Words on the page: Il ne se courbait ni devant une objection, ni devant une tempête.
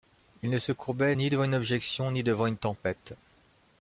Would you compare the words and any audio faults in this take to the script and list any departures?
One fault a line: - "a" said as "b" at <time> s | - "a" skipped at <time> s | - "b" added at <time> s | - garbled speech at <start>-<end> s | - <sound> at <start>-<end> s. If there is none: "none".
none